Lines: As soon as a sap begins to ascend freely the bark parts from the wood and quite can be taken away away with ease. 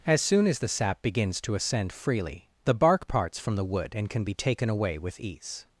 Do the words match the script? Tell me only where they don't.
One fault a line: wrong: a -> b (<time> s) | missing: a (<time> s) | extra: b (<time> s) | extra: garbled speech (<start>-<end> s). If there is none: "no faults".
wrong: a -> the (0.6 s)
missing: quite (4.1 s)
missing: away (5.0 s)